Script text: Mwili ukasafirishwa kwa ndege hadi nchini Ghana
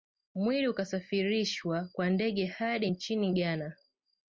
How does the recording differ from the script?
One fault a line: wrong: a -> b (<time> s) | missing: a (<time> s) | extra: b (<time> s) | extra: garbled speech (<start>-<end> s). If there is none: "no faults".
no faults